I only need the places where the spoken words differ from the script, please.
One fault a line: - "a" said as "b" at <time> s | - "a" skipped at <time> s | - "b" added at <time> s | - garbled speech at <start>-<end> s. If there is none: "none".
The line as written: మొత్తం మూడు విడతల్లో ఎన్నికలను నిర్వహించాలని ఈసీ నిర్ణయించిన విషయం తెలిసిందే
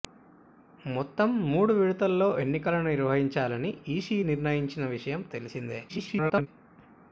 - garbled speech at 5.9-6.5 s